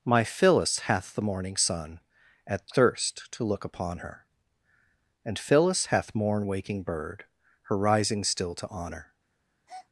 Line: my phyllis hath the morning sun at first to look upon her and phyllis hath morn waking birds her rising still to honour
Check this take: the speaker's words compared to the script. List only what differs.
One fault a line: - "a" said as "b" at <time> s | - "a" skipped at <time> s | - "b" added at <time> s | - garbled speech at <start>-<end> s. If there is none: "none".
- "first" said as "thirst" at 2.7 s
- "birds" said as "bird" at 6.8 s